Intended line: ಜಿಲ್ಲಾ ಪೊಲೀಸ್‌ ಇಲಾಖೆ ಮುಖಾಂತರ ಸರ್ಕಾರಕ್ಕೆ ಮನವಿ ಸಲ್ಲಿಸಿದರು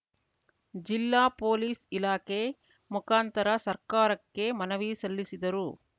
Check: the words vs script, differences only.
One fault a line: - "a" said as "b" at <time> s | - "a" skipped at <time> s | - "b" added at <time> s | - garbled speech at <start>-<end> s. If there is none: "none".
none